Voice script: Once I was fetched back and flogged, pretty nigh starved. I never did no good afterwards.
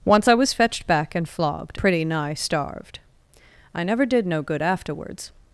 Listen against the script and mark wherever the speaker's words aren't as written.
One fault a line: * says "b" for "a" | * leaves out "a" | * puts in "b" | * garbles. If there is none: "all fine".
all fine